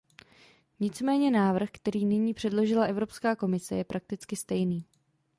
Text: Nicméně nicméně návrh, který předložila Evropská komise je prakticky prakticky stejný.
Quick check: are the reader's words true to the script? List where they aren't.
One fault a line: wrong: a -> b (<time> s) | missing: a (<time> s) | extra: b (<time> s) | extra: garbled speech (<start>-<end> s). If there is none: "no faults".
missing: nicméně (1.3 s)
extra: nyní (2.0 s)
missing: prakticky (4.4 s)